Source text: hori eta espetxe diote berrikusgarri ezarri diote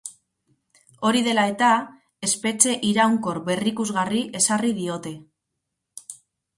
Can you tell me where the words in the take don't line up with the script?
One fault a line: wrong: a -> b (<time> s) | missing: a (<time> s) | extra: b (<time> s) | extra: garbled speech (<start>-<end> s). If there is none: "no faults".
extra: dela (1.3 s)
wrong: diote -> iraunkor (3.0 s)